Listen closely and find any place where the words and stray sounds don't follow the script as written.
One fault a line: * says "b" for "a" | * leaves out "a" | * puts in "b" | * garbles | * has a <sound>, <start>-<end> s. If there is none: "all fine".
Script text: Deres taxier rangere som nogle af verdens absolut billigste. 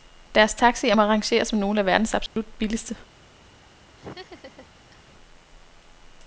* puts in "må"
* has a dropout, 2.3-2.4 s
* has a laugh, 4.0-5.1 s